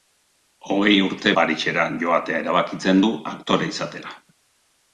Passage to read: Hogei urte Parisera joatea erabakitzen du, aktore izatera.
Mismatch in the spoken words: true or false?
false